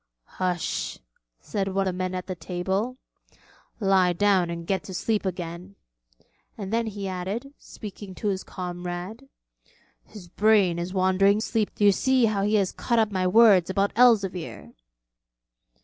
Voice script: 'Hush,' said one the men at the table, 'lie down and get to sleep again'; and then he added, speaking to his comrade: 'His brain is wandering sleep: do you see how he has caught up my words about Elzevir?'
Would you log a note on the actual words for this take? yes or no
no